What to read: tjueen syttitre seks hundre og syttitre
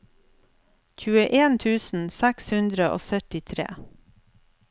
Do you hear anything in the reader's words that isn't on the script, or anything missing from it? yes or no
yes